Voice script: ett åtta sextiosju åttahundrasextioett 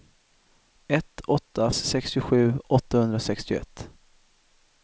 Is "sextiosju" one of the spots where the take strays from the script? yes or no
no